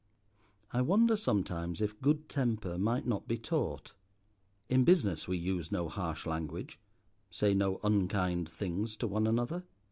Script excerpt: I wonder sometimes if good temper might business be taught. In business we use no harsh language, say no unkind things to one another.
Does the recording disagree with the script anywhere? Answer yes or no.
yes